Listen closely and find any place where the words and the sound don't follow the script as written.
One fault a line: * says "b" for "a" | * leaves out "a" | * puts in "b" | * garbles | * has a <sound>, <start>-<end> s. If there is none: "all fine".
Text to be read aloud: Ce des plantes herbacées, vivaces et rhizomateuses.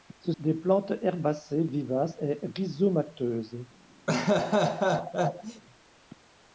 * has a laugh, 4.1-5.6 s